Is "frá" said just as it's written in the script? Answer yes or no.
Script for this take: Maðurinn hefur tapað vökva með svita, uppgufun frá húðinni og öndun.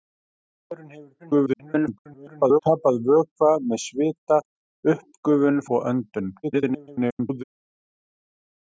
no